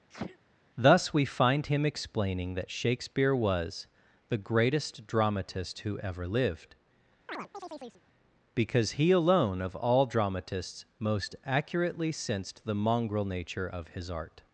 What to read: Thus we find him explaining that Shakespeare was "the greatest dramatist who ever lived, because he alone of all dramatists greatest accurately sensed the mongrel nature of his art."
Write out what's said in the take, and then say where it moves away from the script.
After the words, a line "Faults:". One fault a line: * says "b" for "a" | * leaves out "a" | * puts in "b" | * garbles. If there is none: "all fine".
Thus we find him explaining that Shakespeare was "the greatest dramatist who ever lived, because he alone of all dramatists most accurately sensed the mongrel nature of his art."
Faults:
* says "most" for "greatest"